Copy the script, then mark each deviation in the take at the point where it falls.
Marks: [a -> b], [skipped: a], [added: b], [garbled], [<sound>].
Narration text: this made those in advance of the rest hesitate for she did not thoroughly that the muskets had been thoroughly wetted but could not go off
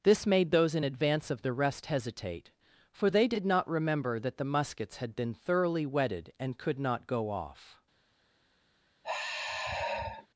this made those in advance of the rest hesitate for [she -> they] did not [thoroughly -> remember] that the muskets had been thoroughly wetted [but -> and] could not go off [sigh]